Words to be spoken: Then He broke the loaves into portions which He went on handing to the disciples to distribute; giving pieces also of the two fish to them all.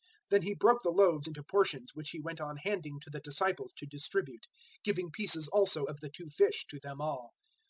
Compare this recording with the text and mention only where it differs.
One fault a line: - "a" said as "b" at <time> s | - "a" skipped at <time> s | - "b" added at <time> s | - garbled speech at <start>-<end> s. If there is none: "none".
none